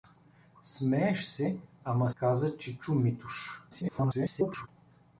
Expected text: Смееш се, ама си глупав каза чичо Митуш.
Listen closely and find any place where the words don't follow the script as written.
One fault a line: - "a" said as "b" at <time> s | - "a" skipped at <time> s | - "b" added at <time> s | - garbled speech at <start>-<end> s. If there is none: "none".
- "си глупав" skipped at 2.1 s
- garbled speech at 3.7-4.7 s